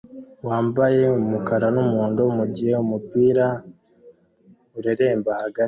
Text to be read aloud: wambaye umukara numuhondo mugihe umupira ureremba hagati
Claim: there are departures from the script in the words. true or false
false